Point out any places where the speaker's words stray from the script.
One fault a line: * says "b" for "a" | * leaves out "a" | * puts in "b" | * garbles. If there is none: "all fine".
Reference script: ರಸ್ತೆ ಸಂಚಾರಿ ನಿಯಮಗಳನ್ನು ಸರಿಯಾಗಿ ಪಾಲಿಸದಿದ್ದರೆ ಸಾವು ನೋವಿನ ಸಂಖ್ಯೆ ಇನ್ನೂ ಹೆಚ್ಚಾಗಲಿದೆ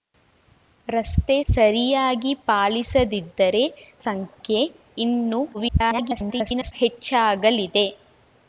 * leaves out "ಸಂಚಾರಿ ನಿಯಮಗಳನ್ನು"
* leaves out "ಸಾವು ನೋವಿನ"
* garbles